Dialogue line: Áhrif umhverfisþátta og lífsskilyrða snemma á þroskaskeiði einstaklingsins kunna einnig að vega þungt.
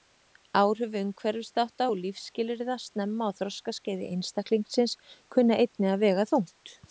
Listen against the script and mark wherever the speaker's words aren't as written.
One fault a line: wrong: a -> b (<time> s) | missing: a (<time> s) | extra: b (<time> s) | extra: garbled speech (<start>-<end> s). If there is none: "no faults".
no faults